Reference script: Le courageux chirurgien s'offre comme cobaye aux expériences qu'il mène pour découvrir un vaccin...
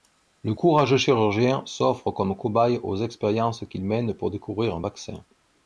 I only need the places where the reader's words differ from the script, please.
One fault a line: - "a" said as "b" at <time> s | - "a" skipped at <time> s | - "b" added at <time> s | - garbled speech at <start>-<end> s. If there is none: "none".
none